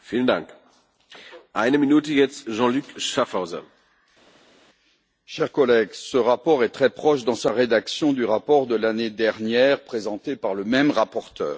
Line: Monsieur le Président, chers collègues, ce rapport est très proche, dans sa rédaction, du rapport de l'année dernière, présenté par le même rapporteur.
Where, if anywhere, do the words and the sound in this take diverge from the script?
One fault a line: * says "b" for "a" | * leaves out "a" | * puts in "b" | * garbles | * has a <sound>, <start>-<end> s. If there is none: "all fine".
all fine